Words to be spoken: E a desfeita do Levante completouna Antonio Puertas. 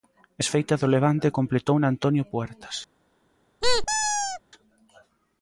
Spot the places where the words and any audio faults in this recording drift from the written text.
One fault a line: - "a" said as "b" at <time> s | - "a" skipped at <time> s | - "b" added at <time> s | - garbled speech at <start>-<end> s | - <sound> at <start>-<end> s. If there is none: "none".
- "a" skipped at 0.4 s
- squeak at 3.6-4.4 s